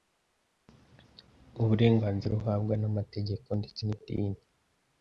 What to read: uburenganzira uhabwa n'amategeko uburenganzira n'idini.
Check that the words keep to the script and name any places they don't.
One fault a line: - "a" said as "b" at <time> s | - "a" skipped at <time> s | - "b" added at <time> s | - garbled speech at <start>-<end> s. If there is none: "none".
- "uburenganzira" said as "ndetse" at 3.6 s